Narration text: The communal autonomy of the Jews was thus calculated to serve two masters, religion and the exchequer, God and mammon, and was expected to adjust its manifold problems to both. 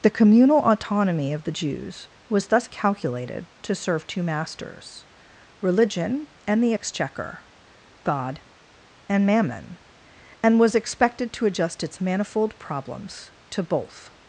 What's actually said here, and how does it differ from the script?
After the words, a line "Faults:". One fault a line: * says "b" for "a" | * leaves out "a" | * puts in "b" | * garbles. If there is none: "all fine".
The communal autonomy of the Jews was thus calculated to serve two masters, religion and the exchequer, God and mammon, and was expected to adjust its manifold problems to both.
Faults:
all fine